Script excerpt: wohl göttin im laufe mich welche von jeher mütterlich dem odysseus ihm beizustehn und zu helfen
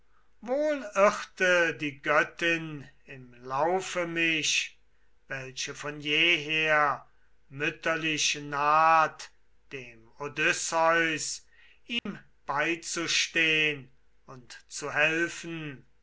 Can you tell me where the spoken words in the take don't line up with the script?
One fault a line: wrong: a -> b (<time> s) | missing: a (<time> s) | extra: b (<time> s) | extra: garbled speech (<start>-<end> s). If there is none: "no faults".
extra: irrte die (0.9 s)
extra: naht (8.3 s)